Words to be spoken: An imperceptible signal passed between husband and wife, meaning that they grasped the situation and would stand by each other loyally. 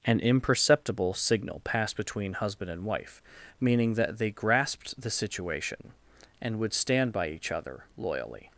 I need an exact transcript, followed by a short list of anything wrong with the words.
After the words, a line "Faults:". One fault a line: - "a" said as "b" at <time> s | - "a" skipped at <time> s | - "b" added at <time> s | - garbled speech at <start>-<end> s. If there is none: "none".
An imperceptible signal passed between husband and wife, meaning that they grasped the situation and would stand by each other loyally.
Faults:
none